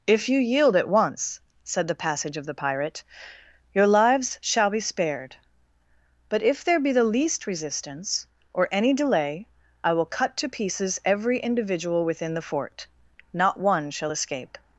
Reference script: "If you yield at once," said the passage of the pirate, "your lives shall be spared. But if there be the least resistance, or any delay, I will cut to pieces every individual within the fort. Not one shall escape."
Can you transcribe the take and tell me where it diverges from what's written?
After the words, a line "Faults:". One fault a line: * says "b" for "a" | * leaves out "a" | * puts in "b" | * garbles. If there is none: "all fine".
"If you yield at once," said the passage of the pirate, "your lives shall be spared. But if there be the least resistance, or any delay, I will cut to pieces every individual within the fort. Not one shall escape."
Faults:
all fine